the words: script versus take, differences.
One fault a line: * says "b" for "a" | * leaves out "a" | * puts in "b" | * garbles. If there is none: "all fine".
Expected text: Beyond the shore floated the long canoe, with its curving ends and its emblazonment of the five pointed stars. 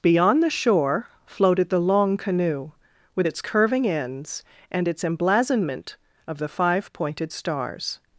all fine